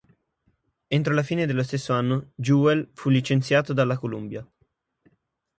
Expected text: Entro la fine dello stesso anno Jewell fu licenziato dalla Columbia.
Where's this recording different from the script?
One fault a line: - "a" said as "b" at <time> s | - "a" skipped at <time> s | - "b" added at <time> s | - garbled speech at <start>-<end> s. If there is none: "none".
none